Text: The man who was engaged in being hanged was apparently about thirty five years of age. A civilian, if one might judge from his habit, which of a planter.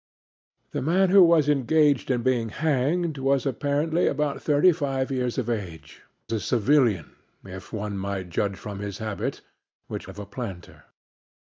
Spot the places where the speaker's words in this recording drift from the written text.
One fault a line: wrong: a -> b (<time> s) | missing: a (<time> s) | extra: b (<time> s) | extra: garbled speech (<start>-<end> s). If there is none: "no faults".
no faults